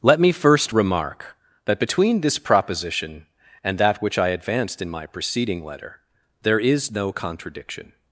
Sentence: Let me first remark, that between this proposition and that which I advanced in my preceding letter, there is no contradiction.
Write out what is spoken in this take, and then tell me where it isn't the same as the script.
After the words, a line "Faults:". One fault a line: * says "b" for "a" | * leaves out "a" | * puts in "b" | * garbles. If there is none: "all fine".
Let me first remark, that between this proposition and that which I advanced in my preceding letter, there is no contradiction.
Faults:
all fine